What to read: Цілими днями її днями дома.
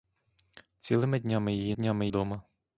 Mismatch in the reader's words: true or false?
false